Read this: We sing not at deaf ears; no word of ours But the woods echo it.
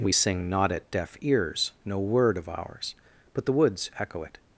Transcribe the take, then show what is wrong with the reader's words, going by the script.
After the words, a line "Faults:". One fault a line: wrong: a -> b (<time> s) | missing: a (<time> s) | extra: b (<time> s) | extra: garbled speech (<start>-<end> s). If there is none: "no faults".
We sing not at deaf ears; no word of ours But the woods echo it.
Faults:
no faults